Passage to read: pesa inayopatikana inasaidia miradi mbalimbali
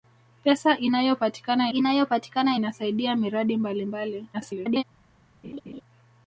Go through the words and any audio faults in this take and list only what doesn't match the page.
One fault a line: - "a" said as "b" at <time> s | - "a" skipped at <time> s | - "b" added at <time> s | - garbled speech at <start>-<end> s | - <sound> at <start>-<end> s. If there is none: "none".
- "inayopatikana" added at 1.7 s
- garbled speech at 4.3-4.8 s
- laugh at 5.4-5.8 s